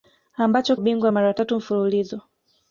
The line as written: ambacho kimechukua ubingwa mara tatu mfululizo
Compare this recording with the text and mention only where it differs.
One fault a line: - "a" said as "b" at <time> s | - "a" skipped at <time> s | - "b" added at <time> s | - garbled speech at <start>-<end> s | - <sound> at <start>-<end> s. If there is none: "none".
- "kimechukua" skipped at 0.8 s